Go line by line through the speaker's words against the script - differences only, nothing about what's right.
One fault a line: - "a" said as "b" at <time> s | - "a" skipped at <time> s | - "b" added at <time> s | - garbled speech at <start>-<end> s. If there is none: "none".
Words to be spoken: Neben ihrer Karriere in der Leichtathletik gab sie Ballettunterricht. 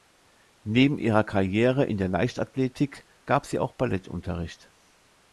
- "auch" added at 3.6 s